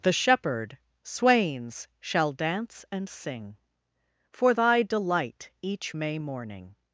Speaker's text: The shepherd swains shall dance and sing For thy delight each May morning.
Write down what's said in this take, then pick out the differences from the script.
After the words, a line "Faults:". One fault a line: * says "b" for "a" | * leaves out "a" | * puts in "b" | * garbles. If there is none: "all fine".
The shepherd swains shall dance and sing For thy delight each May morning.
Faults:
all fine